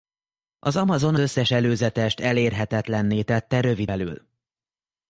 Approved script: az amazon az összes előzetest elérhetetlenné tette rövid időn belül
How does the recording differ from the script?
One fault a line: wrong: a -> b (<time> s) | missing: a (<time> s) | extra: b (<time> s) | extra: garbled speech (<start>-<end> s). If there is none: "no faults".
missing: az (1.1 s)
missing: időn (3.9 s)